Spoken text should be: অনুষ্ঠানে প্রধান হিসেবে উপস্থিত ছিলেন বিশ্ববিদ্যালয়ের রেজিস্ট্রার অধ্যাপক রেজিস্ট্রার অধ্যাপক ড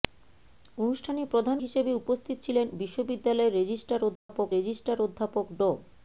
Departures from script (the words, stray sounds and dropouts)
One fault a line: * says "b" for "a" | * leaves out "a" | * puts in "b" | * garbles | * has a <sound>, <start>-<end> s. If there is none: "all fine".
* has a dropout, 4.2-4.3 s